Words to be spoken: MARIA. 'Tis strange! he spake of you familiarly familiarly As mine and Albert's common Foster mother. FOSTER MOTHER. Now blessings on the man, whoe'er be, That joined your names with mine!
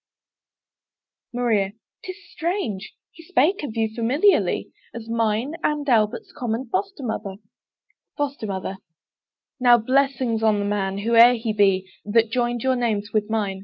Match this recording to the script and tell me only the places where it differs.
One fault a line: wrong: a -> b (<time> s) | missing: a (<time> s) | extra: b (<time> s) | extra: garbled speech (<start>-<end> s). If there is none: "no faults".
missing: familiarly (4.7 s)
extra: he (11.3 s)